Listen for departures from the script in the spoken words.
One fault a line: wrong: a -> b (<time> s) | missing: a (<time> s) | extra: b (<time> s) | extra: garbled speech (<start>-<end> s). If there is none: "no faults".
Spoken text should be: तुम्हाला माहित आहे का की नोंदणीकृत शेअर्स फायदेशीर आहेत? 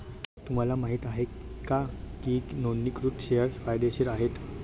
no faults